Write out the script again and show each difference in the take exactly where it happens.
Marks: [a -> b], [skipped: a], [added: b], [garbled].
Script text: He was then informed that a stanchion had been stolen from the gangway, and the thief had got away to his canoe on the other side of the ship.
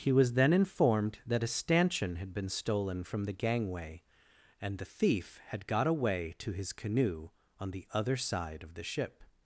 He was then informed that a stanchion had been stolen from the gangway, and the thief had got away to his canoe on the other side of the ship.